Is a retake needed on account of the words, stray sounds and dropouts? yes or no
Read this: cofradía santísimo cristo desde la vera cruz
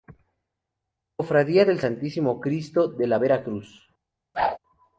yes